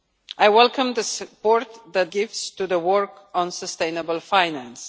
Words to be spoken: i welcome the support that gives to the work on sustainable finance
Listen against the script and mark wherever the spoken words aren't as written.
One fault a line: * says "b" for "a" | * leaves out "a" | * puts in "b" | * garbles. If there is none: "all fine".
all fine